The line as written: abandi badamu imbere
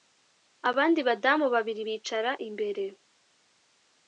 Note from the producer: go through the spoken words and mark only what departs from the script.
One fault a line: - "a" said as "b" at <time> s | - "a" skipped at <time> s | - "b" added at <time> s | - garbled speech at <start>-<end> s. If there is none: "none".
- "babiri bicara" added at 1.5 s